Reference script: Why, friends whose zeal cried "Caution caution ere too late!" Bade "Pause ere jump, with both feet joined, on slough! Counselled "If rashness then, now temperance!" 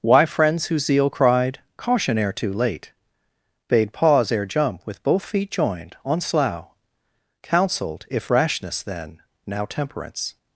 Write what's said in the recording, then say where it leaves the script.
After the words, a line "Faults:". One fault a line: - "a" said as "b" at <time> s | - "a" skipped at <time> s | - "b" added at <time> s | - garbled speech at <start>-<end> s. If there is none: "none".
Why, friends whose zeal cried "Caution ere too late!" Bade "Pause ere jump, with both feet joined, on slough! Counselled "If rashness then, now temperance!"
Faults:
- "caution" skipped at 2.2 s